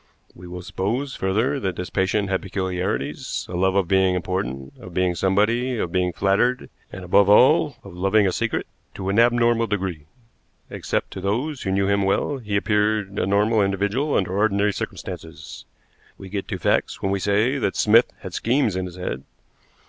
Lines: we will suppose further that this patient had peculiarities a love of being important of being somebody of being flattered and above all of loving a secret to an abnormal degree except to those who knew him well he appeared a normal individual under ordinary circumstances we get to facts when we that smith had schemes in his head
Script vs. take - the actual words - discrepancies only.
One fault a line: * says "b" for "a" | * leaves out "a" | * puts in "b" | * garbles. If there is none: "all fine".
* puts in "say"